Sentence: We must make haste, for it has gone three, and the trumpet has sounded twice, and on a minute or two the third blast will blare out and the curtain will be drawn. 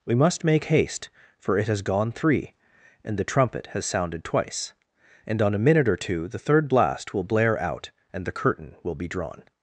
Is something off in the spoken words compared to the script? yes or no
no